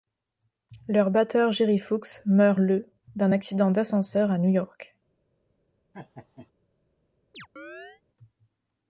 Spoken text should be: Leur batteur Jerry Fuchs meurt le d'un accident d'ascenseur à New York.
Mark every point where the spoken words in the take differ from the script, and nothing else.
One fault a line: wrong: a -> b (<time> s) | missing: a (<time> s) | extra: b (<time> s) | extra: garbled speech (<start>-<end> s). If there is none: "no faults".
no faults